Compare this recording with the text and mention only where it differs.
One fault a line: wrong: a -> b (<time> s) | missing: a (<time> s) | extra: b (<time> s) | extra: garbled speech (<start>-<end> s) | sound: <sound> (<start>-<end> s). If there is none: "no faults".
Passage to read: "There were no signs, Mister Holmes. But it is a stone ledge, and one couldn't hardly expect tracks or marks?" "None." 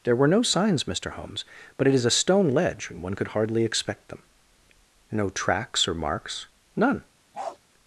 wrong: couldn't -> could (3.1 s)
extra: them No (4.1 s)
sound: bark (7.3-7.6 s)